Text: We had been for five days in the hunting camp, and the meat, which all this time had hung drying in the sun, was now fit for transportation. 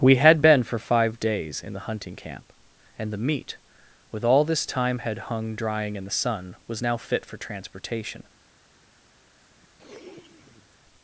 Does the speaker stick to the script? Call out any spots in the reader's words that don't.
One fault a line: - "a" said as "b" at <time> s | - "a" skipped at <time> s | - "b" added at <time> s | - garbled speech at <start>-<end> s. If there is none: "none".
- "which" said as "with" at 4.1 s